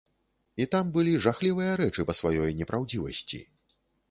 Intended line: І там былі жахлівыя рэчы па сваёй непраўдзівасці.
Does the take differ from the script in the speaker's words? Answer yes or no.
no